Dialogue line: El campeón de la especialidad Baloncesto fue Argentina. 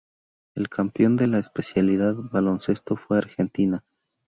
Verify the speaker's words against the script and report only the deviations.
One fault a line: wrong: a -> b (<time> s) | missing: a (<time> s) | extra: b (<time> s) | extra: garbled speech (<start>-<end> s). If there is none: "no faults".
no faults